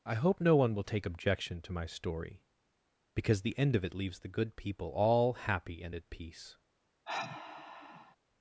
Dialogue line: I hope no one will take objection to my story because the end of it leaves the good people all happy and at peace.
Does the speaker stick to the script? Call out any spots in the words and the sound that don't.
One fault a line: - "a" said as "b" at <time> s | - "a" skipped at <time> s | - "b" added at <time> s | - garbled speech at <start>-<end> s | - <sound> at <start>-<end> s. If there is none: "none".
- sigh at 7.1-8.2 s